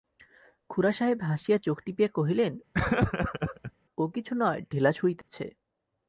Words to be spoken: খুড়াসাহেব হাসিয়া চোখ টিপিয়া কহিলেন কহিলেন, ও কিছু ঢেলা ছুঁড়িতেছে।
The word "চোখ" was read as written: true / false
true